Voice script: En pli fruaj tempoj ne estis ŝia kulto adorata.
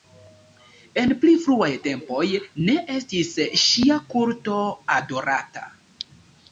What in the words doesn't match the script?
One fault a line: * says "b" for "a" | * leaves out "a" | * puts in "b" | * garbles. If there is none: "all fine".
all fine